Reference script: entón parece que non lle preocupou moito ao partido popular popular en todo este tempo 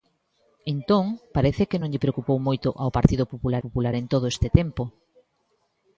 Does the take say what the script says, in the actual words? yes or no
yes